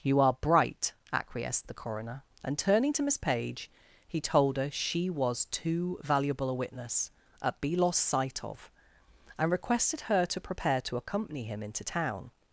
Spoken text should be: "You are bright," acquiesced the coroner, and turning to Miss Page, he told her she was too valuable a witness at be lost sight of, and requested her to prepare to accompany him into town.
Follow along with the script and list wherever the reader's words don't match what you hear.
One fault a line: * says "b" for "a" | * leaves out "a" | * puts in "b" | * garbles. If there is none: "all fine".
all fine